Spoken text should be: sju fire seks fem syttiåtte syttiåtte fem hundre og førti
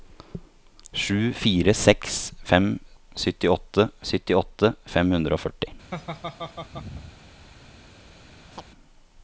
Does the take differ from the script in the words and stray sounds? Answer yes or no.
yes